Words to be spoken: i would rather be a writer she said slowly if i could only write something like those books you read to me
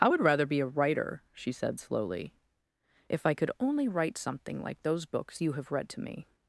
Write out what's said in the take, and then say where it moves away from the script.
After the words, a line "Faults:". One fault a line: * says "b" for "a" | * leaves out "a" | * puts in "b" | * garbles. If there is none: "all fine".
i would rather be a writer she said slowly if i could only write something like those books you have read to me
Faults:
* puts in "have"